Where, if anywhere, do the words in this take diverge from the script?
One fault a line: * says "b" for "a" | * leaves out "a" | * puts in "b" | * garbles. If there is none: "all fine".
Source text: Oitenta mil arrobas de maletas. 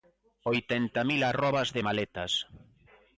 all fine